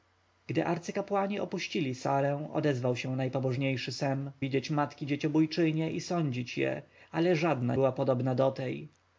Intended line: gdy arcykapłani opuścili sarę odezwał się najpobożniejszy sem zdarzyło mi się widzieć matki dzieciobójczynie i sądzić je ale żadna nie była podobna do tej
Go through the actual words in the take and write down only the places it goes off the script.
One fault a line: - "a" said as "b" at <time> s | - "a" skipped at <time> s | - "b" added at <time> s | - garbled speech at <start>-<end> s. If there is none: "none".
- "zdarzyło mi się" skipped at 4.3 s
- "nie" skipped at 7.8 s